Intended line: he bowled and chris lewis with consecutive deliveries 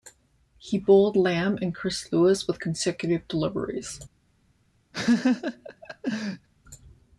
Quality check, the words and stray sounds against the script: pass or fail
fail